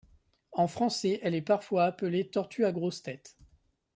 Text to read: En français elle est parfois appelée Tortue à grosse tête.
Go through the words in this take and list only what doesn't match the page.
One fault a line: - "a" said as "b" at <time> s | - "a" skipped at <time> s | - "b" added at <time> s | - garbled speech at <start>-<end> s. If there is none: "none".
none